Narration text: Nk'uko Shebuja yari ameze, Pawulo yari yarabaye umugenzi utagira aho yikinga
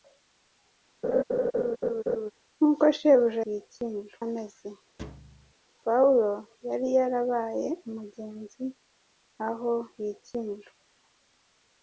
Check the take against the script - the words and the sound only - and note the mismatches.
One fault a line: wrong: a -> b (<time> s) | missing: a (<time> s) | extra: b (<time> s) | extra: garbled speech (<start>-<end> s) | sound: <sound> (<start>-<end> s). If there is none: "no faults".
sound: laugh (1.0-2.3 s)
wrong: yari -> yikinga (3.5 s)
sound: thud (5.0-5.5 s)
missing: utagira (8.6 s)